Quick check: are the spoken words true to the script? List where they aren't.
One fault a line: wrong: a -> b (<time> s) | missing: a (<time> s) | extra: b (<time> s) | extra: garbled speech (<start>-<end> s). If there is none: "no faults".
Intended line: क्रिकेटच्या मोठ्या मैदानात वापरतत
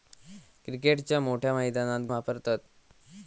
no faults